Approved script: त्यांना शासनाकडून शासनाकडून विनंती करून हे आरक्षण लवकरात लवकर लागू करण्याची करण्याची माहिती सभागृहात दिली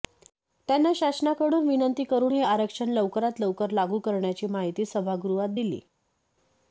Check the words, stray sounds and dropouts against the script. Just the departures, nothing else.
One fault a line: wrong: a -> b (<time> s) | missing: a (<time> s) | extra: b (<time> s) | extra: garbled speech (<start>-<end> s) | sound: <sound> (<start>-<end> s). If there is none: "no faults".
missing: शासनाकडून (1.7 s)
missing: करण्याची (4.5 s)